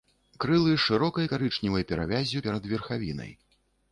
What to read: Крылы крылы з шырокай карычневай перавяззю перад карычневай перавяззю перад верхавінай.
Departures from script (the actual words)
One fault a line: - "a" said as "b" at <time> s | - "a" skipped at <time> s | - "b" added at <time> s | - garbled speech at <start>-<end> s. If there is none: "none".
- "крылы" skipped at 0.7 s
- "карычневай перавяззю перад" skipped at 2.7 s